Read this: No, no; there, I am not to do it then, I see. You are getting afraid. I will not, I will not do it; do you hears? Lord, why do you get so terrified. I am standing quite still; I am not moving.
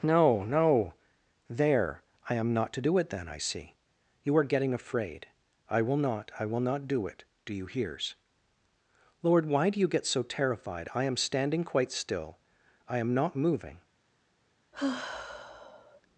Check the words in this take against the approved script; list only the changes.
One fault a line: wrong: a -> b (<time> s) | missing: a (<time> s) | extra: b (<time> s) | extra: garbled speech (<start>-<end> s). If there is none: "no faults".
no faults